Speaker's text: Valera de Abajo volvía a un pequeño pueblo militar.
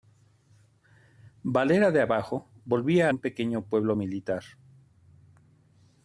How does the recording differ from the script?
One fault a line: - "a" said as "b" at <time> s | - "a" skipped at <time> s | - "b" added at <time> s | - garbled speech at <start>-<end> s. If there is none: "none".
none